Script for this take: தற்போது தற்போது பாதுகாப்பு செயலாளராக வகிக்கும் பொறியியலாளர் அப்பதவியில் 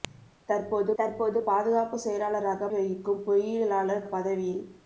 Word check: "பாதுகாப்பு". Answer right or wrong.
right